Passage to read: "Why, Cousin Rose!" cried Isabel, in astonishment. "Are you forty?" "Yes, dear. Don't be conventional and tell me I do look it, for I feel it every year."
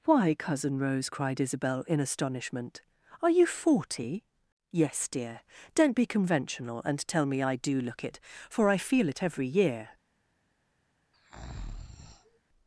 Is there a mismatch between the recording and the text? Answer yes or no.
no